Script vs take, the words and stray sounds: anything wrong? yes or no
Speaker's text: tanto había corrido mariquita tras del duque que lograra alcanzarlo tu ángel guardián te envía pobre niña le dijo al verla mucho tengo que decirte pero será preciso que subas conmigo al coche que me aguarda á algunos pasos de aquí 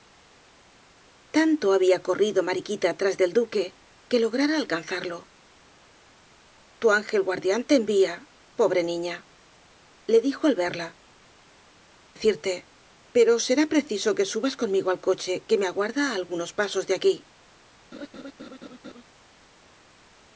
yes